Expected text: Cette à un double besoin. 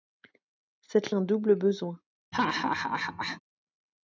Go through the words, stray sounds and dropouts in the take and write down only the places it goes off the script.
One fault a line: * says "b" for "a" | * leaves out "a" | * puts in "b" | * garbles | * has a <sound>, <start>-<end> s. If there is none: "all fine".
* has a laugh, 2.3-3.4 s